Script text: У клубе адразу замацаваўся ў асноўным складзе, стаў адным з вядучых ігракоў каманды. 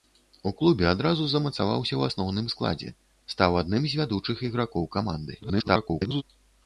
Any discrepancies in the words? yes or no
yes